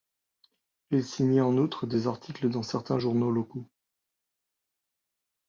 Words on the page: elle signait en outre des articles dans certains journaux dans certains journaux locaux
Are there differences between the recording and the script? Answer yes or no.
yes